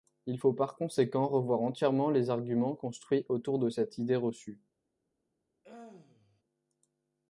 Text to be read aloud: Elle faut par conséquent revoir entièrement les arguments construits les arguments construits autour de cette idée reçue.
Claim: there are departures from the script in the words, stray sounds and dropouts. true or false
true